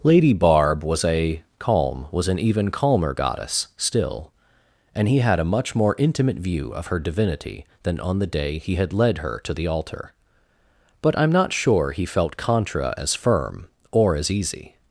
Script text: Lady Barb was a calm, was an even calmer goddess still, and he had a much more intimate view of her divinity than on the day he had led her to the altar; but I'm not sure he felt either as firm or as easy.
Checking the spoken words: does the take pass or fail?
fail